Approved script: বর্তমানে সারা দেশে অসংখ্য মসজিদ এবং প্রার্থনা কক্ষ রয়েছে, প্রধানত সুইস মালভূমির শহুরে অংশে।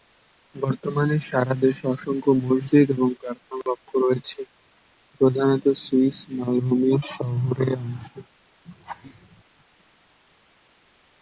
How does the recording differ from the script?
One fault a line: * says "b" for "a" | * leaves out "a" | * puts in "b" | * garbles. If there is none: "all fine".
all fine